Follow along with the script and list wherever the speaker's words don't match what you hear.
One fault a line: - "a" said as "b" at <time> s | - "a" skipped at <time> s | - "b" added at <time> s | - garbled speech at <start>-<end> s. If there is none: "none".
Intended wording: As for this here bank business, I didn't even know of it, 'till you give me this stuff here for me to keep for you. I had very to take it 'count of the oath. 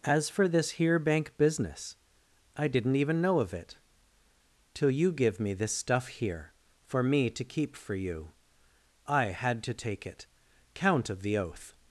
- "very" skipped at 9.6 s